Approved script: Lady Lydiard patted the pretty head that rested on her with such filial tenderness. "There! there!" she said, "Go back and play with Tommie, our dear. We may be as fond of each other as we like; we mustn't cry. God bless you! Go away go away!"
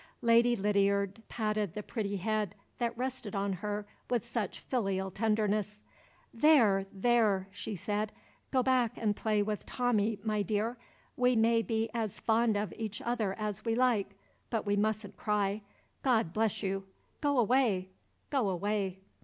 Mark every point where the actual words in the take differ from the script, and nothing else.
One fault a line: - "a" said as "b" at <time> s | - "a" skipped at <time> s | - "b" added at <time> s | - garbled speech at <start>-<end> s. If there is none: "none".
- "our" said as "my" at 10.2 s
- "but" added at 14.5 s